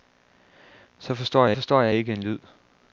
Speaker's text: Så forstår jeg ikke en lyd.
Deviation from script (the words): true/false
true